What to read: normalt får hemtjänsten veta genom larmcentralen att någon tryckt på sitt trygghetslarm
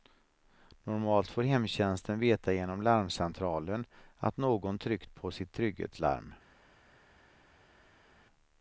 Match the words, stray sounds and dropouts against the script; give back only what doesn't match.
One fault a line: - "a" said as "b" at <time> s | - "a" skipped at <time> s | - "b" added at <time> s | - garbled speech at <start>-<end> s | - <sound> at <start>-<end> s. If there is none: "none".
none